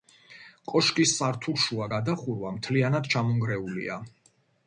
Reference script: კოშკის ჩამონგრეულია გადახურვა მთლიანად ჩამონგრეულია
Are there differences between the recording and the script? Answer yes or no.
yes